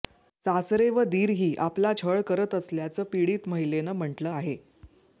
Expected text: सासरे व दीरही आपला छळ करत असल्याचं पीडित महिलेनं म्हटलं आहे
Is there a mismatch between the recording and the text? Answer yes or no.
no